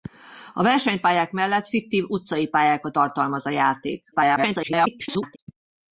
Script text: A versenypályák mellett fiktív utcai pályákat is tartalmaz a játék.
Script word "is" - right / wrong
wrong